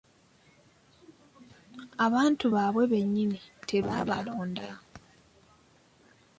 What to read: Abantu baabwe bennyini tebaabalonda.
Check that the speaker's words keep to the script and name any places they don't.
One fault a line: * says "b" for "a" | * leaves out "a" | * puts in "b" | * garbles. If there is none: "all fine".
all fine